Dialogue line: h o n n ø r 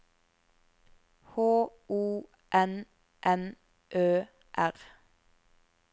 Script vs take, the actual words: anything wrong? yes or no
no